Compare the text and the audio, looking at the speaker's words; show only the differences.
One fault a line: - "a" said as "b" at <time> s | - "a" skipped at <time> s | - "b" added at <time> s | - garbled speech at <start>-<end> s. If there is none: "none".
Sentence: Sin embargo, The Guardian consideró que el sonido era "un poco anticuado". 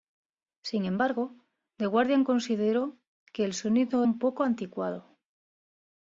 - "era" skipped at 4.0 s